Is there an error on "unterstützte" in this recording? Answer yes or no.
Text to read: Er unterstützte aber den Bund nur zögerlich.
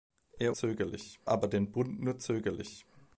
yes